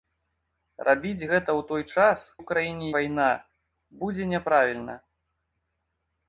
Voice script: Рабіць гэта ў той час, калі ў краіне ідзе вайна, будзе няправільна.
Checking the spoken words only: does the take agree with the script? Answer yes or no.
no